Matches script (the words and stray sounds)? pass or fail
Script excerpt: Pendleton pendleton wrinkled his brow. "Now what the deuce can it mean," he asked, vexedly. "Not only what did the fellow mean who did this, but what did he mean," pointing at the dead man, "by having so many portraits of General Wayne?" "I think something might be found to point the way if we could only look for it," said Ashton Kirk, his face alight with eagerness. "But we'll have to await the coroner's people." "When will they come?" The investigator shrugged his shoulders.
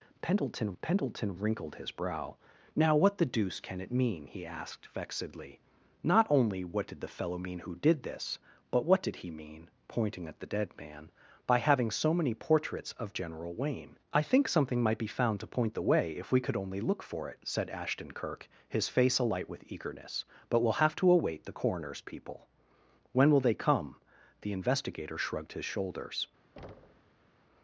fail